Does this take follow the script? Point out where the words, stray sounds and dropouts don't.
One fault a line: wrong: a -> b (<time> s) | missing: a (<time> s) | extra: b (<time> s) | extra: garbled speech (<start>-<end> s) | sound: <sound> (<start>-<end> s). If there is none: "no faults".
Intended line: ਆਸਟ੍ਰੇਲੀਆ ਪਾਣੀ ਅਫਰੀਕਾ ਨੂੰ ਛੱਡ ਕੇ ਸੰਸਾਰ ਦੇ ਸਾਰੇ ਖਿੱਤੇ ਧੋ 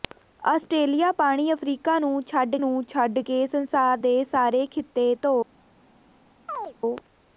extra: ਨੂੰ ਛੱਡ (2.6 s)
sound: chirp (6.5-6.7 s)